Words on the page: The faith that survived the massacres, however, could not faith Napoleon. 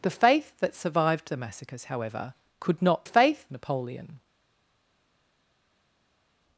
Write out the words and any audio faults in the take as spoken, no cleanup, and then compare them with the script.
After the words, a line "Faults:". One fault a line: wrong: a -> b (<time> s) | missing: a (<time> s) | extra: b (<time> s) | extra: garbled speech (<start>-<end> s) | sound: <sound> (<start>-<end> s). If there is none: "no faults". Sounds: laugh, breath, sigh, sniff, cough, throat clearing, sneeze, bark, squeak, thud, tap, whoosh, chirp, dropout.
The faith that survived the massacres, however, could not faith Napoleon.
Faults:
no faults